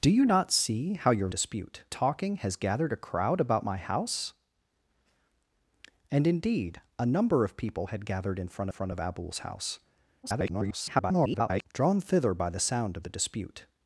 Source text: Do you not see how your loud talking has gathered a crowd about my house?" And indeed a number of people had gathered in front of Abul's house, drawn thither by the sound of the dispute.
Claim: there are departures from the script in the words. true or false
true